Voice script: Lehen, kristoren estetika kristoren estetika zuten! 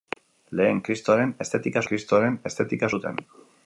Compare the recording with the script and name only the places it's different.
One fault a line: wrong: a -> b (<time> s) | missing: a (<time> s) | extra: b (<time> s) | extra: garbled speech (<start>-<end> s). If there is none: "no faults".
no faults